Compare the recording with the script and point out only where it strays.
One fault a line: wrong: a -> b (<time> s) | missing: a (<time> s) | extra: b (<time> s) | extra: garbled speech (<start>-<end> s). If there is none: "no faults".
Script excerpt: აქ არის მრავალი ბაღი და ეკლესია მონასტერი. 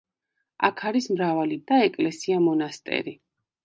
missing: ბაღი (1.6 s)